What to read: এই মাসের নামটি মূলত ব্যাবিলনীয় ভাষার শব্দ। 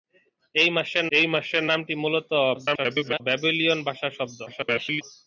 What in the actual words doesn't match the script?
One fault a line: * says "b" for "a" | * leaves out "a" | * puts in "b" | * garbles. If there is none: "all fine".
* puts in "এই মাসের"
* garbles
* garbles